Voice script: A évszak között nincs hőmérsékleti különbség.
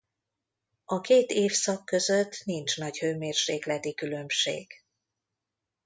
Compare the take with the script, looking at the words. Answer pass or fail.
fail